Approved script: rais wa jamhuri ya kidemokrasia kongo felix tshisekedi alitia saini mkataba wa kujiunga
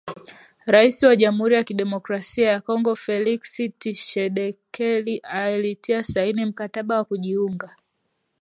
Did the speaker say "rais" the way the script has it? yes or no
yes